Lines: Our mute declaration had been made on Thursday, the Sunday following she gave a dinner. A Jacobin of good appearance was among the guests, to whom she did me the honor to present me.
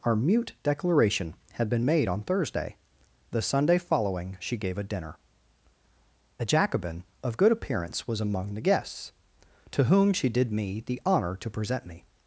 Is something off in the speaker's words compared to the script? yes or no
no